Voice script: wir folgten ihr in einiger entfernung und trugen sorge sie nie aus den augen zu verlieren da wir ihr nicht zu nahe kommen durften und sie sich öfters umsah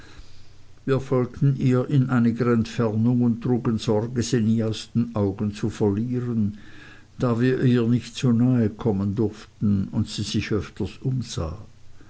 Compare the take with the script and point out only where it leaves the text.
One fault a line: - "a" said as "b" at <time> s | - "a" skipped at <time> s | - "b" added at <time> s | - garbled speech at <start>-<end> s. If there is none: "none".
none